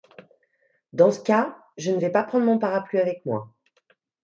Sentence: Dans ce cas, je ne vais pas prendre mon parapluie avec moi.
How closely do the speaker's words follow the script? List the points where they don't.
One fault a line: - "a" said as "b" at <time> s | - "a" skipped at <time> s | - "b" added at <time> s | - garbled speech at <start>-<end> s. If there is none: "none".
none